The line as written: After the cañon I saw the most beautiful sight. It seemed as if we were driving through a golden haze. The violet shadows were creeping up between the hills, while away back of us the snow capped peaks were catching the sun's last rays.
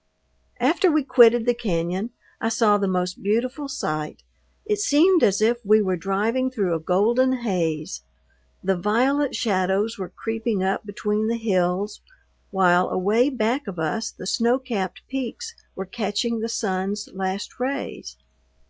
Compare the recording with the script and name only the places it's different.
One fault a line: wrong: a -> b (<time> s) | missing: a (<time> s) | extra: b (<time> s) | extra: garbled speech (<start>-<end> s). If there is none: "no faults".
extra: we quitted (0.9 s)